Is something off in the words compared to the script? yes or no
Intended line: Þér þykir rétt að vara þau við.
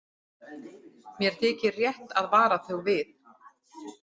yes